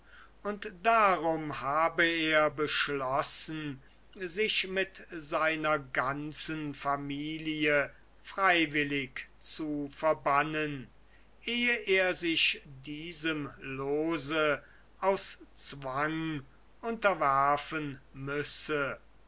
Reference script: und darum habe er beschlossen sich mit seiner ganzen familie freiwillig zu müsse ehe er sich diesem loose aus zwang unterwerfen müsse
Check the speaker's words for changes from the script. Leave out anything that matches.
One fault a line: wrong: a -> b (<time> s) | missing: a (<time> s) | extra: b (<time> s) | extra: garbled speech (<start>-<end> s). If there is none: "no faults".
wrong: müsse -> verbannen (9.9 s)